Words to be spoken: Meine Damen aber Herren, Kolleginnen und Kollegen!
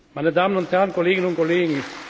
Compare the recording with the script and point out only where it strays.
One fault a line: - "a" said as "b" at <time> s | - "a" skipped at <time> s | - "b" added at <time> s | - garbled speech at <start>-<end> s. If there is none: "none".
- "aber" said as "und" at 0.6 s